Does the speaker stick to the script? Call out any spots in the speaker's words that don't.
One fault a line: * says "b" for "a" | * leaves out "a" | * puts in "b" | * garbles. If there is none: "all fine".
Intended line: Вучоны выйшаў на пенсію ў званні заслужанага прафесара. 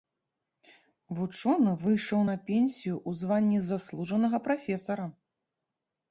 all fine